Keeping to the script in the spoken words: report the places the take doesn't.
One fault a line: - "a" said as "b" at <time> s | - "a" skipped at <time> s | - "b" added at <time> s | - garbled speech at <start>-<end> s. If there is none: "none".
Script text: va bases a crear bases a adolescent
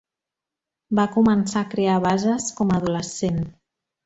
- "bases" said as "començar" at 1.1 s
- "com" added at 2.6 s